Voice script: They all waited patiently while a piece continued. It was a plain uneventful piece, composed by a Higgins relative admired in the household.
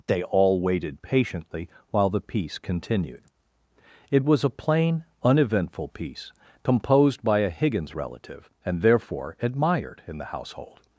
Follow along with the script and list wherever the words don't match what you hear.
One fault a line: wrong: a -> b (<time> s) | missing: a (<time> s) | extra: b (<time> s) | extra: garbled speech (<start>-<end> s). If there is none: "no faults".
wrong: a -> the (2.1 s)
extra: and therefore (8.7 s)